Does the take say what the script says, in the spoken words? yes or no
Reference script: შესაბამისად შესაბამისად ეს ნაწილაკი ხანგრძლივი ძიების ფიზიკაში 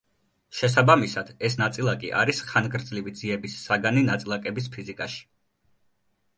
no